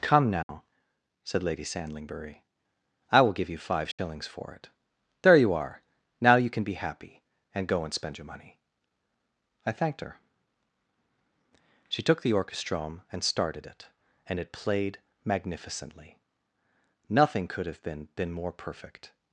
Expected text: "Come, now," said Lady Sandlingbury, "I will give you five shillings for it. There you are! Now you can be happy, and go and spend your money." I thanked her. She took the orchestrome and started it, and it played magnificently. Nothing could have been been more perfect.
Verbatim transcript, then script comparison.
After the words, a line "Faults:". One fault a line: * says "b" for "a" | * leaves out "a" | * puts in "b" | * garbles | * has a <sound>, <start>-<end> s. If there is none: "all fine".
"Come, now," said Lady Sandlingbury, "I will give you five shillings for it. There you are! Now you can be happy, and go and spend your money." I thanked her. She took the orchestrome and started it, and it played magnificently. Nothing could have been been more perfect.
Faults:
* has a dropout, 0.4-0.5 s
* has a dropout, 3.9-4.0 s